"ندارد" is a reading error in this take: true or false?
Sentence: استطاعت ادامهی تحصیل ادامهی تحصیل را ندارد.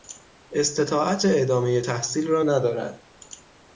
false